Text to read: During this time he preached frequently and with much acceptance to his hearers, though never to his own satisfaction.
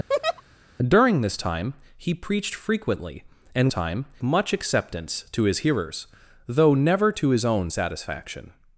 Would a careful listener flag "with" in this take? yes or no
yes